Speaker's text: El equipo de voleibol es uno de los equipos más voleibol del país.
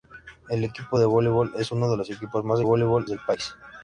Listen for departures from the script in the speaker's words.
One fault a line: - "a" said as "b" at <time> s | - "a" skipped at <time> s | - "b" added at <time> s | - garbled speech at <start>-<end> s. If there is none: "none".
none